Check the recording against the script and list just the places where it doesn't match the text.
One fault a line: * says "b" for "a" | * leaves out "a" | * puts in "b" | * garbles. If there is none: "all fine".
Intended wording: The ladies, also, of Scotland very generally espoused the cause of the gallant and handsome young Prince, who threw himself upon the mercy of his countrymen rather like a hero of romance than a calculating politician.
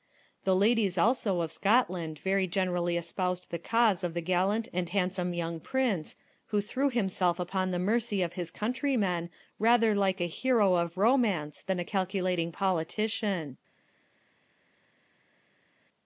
all fine